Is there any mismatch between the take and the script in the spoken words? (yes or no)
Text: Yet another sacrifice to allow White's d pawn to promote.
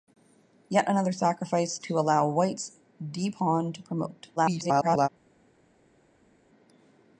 yes